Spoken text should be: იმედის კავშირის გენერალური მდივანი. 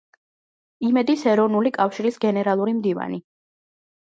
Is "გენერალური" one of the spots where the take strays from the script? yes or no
no